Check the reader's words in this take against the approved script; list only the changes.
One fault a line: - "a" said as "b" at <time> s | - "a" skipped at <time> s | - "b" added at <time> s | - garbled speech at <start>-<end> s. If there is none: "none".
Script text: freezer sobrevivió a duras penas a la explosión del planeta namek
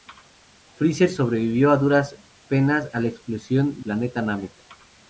- "del" skipped at 3.9 s